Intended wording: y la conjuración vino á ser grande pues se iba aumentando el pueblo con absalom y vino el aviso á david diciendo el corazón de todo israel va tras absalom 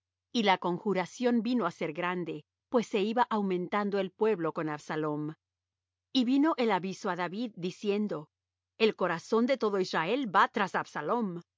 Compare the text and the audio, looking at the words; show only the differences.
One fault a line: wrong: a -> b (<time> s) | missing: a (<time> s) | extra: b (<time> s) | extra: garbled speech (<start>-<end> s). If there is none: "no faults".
no faults